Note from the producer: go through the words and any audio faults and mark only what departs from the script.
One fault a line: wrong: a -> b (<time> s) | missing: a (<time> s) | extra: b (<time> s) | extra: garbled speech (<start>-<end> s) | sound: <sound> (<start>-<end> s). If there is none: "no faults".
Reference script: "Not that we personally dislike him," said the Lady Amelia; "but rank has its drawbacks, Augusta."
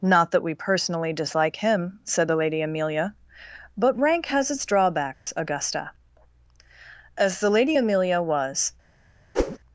sound: dropout (5.1-5.3 s)
extra: As the Lady Amelia was (7.2 s)
sound: whoosh (9.3-9.6 s)